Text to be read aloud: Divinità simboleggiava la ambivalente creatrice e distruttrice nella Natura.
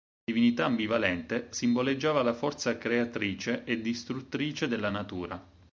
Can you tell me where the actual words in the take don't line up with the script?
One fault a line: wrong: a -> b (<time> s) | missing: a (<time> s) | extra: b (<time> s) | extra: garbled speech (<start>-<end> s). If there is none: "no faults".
extra: ambivalente (0.7 s)
wrong: ambivalente -> forza (2.3 s)
wrong: nella -> della (4.7 s)